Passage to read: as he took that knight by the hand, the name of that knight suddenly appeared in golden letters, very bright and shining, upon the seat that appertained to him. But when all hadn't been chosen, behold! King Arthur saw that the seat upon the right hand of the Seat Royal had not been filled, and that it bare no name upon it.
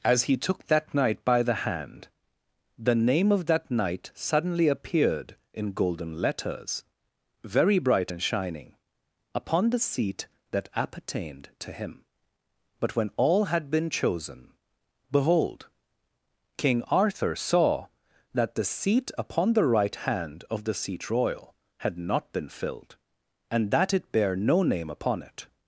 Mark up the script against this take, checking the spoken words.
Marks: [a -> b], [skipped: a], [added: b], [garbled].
as he took that knight by the hand, the name of that knight suddenly appeared in golden letters, very bright and shining, upon the seat that appertained to him. But when all [hadn't -> had] been chosen, behold! King Arthur saw that the seat upon the right hand of the Seat Royal had not been filled, and that it bare no name upon it.